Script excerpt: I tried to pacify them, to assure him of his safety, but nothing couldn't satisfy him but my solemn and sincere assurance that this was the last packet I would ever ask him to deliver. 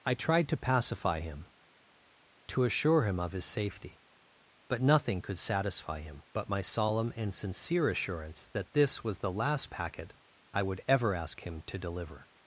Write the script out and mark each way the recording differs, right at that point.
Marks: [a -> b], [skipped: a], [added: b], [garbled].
I tried to pacify [them, -> him] to assure him of his safety, but nothing [couldn't -> could] satisfy him but my solemn and sincere assurance that this was the last packet I would ever ask him to deliver.